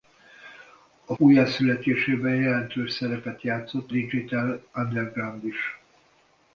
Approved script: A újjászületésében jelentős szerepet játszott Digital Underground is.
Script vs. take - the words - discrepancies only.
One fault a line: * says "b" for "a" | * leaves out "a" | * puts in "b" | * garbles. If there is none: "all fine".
all fine